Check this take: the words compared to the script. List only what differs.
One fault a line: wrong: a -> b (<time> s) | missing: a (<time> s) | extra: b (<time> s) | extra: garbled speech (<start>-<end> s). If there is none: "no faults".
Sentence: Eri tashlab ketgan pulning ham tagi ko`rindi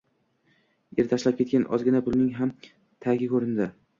extra: ozgina (1.8 s)